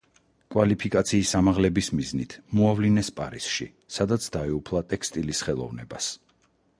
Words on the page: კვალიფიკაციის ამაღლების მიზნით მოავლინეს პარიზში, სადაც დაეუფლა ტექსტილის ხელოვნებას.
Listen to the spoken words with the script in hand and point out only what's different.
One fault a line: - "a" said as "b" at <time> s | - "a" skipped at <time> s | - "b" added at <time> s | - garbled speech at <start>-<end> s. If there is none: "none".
none